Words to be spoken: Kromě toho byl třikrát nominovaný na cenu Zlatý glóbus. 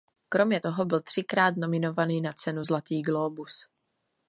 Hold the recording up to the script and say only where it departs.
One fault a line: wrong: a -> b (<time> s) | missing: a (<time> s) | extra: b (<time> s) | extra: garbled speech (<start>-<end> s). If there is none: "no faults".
no faults